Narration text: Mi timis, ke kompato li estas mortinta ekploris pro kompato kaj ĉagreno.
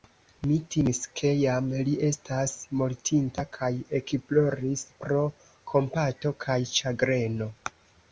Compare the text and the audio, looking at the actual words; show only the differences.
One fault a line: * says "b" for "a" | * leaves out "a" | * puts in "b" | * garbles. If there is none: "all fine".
* says "jam" for "kompato"
* puts in "kaj"